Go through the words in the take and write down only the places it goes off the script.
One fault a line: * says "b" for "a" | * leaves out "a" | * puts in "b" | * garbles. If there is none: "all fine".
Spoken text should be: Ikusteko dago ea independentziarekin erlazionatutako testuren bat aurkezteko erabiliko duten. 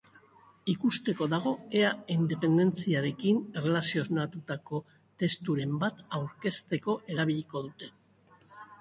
all fine